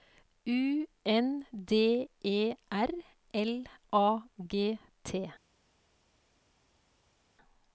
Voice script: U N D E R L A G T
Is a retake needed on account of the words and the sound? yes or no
no